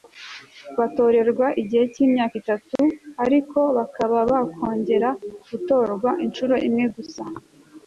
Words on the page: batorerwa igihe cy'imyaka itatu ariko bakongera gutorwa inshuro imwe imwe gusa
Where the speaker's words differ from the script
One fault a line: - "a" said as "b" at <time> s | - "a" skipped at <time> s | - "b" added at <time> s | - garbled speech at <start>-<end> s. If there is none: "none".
- "bakaba" added at 3.8 s
- "imwe" skipped at 6.8 s